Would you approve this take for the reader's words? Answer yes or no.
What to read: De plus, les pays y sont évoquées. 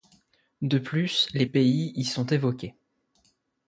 yes